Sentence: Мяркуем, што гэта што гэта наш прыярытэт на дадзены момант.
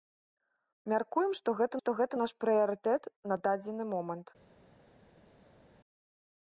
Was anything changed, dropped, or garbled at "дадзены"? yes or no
no